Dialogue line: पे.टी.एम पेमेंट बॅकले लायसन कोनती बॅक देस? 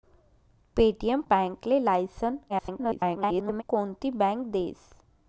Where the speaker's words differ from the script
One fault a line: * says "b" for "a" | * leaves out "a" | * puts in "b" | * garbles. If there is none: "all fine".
* leaves out "पेमेंट"
* garbles